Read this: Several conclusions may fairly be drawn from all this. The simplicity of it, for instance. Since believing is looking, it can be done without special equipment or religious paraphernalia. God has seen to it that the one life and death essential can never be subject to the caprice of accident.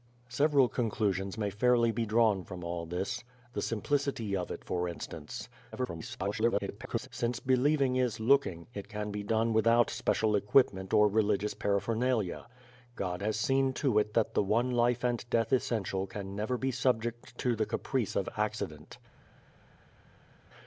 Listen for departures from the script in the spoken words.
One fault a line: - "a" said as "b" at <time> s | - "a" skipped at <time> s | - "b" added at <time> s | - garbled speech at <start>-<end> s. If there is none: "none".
- garbled speech at 5.7-7.1 s